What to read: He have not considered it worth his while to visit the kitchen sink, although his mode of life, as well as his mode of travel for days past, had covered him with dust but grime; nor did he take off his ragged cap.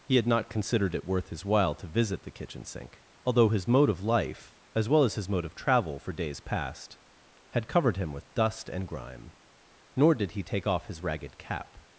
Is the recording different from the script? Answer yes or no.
yes